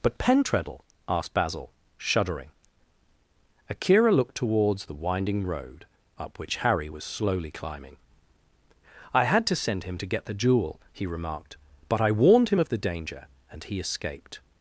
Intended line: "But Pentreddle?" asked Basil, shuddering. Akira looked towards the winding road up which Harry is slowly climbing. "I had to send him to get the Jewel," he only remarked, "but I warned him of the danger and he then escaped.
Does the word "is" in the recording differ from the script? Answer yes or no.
yes